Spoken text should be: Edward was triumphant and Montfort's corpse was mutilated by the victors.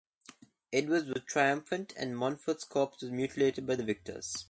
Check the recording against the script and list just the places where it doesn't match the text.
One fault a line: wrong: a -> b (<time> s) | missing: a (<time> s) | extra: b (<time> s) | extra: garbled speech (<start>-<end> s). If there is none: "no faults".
no faults